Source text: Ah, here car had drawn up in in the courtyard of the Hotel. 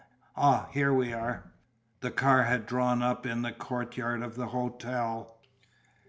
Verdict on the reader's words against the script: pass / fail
fail